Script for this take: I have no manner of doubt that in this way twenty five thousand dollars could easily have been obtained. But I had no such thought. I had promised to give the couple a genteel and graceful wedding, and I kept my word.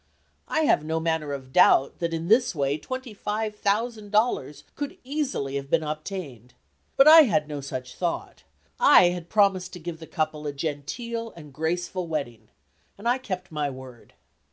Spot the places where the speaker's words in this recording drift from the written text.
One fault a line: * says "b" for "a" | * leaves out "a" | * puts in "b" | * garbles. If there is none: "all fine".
all fine